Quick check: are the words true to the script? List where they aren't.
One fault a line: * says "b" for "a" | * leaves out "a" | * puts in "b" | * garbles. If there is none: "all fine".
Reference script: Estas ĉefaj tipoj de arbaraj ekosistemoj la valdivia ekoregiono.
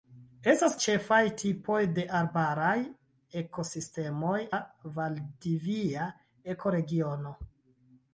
all fine